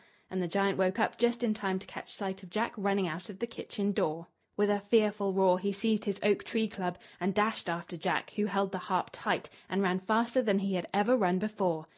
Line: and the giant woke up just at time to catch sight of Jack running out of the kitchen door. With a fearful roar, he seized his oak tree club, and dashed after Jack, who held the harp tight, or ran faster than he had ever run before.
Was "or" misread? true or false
true